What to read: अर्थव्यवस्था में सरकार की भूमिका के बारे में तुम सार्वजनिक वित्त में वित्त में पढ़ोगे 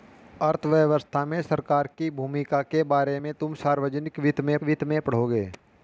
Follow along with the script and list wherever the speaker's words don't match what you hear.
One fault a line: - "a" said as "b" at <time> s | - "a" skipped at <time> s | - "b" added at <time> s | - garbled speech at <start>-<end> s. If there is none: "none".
none